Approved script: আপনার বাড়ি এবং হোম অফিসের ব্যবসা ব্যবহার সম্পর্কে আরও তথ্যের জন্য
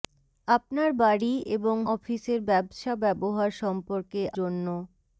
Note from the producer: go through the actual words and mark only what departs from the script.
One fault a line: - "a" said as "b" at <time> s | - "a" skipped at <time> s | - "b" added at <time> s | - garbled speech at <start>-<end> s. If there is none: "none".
- "হোম" skipped at 1.8 s
- "আরও তথ্যের" skipped at 4.2 s